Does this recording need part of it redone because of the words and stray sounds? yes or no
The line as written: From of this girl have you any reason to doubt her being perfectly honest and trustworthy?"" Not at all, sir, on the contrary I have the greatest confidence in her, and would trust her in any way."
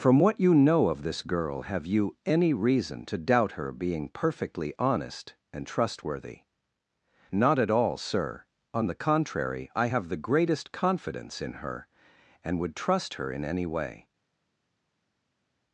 yes